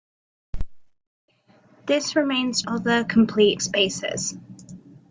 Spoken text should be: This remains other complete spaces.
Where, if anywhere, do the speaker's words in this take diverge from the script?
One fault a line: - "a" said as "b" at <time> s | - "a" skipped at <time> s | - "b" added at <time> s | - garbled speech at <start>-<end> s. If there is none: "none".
none